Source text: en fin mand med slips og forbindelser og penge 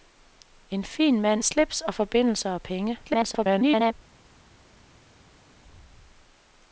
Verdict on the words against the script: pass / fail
fail